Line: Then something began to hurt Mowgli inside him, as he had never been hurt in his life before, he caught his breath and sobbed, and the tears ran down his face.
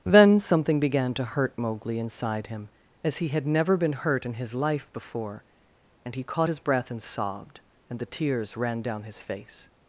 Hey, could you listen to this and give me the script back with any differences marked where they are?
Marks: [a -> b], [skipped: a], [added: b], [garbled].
Then something began to hurt Mowgli inside him, as he had never been hurt in his life before, [added: and] he caught his breath and sobbed, and the tears ran down his face.